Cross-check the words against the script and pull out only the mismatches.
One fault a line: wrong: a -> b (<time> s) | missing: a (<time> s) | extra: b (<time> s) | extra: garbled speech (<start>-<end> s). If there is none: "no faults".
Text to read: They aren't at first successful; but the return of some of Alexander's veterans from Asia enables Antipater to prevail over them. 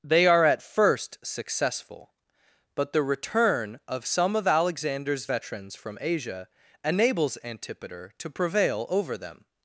wrong: aren't -> are (0.2 s)